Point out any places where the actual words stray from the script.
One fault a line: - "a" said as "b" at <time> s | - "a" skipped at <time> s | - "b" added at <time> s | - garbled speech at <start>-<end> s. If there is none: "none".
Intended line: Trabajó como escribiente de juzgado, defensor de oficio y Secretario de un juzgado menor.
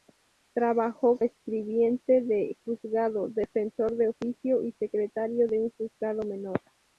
- "como" skipped at 1.2 s